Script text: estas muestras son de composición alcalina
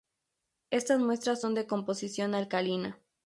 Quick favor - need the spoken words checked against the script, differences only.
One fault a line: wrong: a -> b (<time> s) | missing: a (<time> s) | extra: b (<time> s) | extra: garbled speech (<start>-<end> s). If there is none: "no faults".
no faults